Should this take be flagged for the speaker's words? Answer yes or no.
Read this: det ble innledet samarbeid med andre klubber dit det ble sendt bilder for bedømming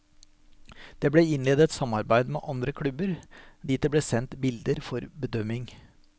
no